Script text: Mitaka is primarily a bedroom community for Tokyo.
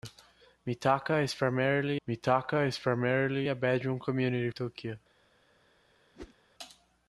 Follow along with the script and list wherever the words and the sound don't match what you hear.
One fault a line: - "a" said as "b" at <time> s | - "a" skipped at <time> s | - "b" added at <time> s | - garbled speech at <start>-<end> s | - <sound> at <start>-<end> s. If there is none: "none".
- "mitaka is primarily" added at 2.1 s
- "for" skipped at 4.5 s
- whoosh at 6.1-6.4 s